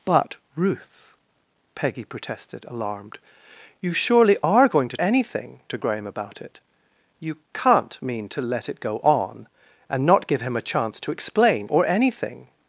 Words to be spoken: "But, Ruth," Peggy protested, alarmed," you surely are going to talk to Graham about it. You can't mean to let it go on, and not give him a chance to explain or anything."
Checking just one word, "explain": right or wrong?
right